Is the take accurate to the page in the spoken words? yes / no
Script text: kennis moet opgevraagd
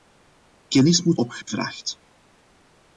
yes